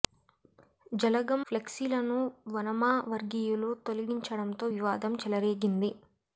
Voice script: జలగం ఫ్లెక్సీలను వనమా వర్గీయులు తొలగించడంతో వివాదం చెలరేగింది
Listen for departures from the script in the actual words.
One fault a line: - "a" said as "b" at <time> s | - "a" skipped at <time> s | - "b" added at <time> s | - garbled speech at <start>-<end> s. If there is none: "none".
none